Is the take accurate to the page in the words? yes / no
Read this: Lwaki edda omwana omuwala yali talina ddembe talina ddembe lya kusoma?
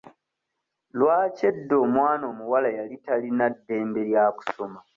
no